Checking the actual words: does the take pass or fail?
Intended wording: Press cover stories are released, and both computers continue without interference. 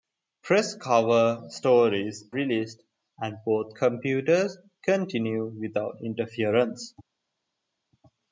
fail